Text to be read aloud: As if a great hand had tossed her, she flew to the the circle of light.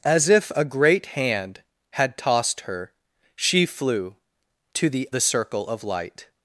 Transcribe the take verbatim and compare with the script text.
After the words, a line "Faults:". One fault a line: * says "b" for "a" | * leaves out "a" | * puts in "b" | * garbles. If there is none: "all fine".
As if a great hand had tossed her, she flew to the the circle of light.
Faults:
all fine